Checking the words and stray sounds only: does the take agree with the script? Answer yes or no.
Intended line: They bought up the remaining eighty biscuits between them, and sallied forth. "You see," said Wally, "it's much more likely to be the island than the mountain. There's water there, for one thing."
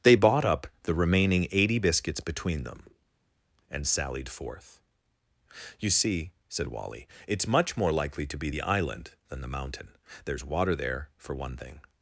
yes